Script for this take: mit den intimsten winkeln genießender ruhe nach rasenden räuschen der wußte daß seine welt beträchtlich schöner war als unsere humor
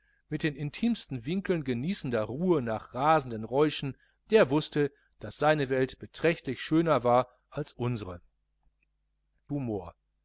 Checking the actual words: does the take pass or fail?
pass